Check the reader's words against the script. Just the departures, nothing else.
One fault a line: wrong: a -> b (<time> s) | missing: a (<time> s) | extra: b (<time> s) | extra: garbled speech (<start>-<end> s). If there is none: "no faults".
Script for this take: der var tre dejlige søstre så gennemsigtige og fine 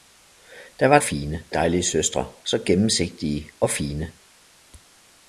wrong: tre -> fine (1.0 s)